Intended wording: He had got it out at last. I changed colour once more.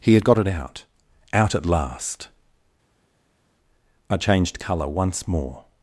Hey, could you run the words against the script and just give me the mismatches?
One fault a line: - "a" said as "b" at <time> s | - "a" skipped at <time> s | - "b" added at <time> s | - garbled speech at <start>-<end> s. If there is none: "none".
- "out" added at 1.3 s